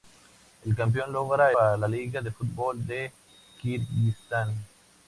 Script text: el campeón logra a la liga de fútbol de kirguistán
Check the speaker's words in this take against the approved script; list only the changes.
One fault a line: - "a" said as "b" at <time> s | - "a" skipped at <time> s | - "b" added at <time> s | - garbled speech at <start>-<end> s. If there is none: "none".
none